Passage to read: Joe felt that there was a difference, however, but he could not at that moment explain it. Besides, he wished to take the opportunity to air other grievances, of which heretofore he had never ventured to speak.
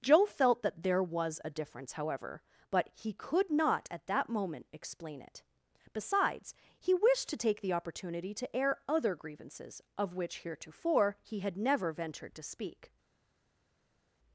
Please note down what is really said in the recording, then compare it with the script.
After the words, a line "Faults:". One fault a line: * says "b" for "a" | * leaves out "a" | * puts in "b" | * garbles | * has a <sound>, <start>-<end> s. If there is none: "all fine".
Joe felt that there was a difference, however, but he could not at that moment explain it. Besides, he wished to take the opportunity to air other grievances, of which heretofore he had never ventured to speak.
Faults:
all fine